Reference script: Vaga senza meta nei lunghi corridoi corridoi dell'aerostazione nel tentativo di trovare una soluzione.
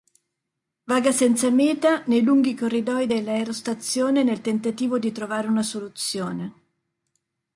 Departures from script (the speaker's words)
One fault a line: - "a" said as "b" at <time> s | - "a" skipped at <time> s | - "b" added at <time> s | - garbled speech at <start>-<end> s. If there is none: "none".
- "corridoi" skipped at 3.1 s